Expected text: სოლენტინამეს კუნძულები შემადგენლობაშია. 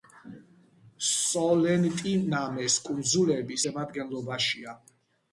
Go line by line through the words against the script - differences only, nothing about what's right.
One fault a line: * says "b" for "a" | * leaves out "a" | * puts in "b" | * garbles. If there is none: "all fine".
all fine